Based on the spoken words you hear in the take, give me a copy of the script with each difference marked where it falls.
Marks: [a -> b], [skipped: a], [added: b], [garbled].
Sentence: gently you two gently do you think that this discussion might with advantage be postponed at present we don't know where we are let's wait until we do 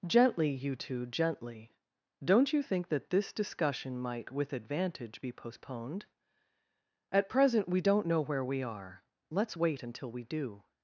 gently you two gently [do -> don't] you think that this discussion might with advantage be postponed at present we don't know where we are let's wait until we do